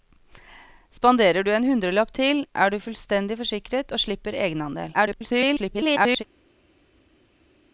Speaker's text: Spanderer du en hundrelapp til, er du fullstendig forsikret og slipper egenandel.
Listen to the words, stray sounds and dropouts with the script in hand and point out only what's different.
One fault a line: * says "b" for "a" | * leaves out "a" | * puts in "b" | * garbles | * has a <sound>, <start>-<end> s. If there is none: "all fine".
* garbles